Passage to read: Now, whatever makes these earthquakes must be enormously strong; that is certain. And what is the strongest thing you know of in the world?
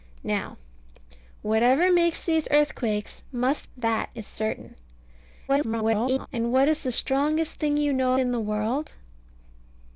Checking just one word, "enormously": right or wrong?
wrong